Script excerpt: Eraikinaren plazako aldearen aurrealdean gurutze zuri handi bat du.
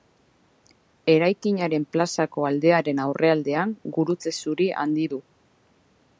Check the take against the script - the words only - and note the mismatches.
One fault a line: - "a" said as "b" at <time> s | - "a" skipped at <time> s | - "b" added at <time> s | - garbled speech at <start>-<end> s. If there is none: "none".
- "bat" skipped at 5.1 s